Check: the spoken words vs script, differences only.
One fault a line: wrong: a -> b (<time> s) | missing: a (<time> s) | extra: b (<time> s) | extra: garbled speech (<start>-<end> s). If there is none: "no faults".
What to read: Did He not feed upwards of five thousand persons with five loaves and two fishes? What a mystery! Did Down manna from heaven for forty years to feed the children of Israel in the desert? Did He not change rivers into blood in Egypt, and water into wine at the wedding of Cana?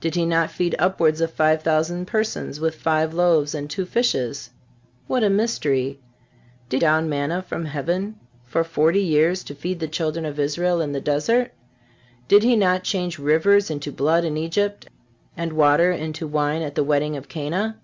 no faults